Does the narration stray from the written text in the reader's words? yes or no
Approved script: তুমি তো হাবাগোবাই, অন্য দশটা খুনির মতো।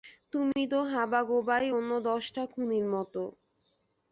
no